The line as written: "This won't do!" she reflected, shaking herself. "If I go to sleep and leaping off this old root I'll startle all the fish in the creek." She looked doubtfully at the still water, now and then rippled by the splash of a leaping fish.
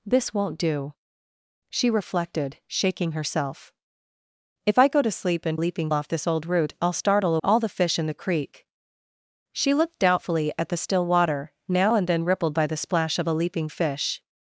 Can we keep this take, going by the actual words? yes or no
yes